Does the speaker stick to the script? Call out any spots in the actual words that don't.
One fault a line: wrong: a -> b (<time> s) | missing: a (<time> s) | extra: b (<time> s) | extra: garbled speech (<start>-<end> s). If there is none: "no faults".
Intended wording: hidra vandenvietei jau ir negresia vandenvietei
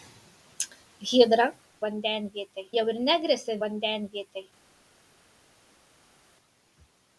no faults